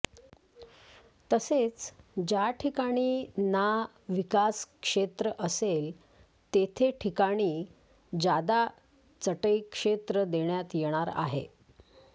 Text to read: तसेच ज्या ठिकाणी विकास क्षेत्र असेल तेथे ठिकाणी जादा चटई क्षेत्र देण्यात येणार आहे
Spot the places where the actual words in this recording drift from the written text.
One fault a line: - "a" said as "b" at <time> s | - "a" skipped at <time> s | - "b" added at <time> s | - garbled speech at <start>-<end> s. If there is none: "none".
- "ना" added at 3.4 s